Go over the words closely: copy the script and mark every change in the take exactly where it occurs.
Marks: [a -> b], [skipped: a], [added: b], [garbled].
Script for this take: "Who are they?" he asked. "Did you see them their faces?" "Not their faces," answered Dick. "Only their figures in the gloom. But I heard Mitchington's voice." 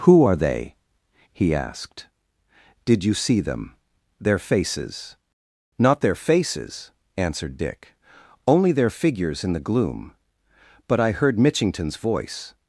"Who are they?" he asked. "Did you see them their faces?" "Not their faces," answered Dick. "Only their figures in the gloom. But I heard Mitchington's voice."